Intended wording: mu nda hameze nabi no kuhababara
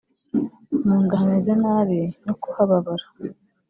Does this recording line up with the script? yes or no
yes